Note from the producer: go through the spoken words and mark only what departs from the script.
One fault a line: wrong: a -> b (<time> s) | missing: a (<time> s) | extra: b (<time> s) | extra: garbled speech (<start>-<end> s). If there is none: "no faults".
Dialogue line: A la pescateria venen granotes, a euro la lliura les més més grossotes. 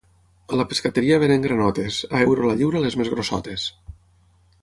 missing: més (3.1 s)